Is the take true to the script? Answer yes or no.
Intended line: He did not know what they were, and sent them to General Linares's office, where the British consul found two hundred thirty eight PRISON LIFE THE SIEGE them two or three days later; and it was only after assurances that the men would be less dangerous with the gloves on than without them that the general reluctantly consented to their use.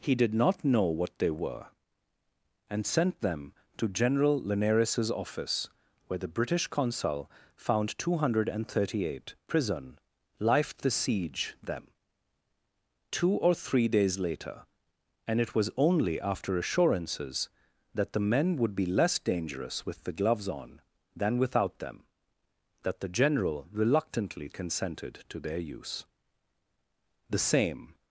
no